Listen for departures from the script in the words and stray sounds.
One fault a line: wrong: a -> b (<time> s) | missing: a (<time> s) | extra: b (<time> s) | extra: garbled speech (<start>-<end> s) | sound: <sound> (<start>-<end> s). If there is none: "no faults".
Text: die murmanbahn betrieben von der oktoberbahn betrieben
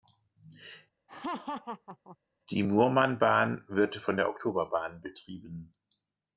sound: laugh (1.1-2.2 s)
wrong: betrieben -> wird (3.7 s)